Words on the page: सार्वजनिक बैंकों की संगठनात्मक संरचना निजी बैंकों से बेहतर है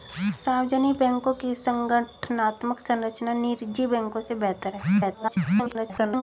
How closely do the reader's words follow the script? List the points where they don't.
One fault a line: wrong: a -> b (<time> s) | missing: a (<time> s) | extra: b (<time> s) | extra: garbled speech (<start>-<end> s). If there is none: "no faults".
extra: garbled speech (5.0-6.2 s)